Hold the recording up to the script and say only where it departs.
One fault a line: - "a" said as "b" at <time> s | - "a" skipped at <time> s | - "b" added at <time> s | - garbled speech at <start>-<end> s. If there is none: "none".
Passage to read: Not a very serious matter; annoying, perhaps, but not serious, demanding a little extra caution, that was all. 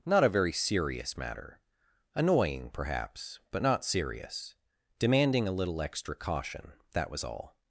none